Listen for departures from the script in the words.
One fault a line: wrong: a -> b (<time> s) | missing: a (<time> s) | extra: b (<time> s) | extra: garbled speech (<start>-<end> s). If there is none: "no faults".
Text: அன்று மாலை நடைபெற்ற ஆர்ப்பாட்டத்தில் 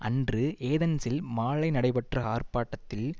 extra: ஏதென்ஸில் (0.7 s)